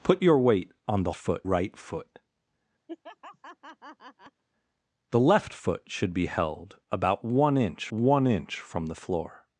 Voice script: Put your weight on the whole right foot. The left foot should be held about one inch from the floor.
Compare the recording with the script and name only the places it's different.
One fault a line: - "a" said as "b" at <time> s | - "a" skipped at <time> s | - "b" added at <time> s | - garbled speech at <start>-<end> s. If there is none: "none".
- "whole" said as "foot" at 1.1 s
- "one inch" added at 7.9 s